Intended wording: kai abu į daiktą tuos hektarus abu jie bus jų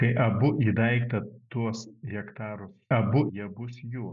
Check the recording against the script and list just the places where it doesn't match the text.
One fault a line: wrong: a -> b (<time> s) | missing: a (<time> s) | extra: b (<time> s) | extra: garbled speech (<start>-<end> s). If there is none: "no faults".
no faults